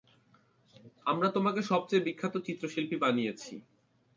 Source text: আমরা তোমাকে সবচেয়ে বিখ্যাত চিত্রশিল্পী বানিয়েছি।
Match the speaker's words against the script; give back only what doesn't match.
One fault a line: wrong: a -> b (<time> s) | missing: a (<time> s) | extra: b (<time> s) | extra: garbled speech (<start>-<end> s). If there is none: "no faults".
no faults